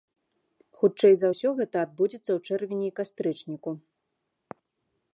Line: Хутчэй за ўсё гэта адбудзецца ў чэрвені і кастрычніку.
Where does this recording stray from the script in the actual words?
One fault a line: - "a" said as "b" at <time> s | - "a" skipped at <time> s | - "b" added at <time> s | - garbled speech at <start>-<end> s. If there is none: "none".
none